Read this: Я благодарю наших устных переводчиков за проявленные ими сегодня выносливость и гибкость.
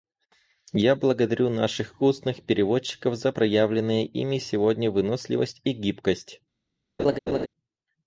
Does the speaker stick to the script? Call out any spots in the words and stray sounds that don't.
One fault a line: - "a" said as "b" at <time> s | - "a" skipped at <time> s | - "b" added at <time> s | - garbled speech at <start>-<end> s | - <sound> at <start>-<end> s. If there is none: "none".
- laugh at 7.0-7.5 s